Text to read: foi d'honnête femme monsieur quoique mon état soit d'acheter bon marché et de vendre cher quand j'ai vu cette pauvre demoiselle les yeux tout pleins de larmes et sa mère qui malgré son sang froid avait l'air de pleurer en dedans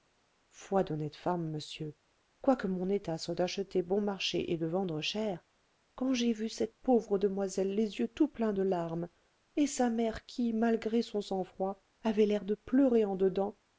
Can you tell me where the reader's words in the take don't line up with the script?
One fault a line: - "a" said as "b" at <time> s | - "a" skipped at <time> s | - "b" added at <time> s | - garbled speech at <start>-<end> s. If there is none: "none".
none